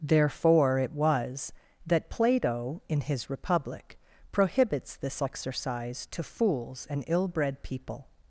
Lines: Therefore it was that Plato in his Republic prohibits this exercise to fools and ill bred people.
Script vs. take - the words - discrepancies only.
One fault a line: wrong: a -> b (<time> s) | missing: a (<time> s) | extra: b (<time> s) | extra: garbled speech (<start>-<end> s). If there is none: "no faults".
no faults